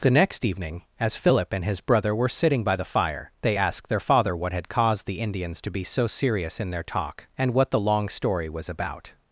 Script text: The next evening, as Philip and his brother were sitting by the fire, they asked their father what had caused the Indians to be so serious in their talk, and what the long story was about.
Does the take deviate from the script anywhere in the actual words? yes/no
no